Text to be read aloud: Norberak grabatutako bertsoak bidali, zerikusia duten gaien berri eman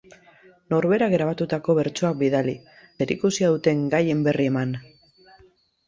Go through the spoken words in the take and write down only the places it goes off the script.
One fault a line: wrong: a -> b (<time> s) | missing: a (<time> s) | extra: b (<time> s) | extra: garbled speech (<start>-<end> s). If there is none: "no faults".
no faults